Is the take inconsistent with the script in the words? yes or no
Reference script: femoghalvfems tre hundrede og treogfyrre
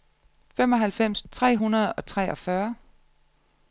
no